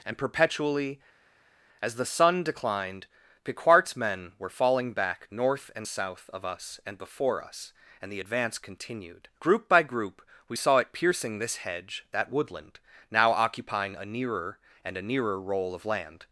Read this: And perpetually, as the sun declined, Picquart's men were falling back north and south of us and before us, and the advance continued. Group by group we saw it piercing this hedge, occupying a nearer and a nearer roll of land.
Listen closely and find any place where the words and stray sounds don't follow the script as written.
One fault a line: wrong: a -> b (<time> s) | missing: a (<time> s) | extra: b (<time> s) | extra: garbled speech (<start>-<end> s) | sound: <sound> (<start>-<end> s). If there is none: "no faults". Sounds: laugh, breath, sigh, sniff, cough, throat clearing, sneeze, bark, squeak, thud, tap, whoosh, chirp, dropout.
extra: that woodland now (12.1 s)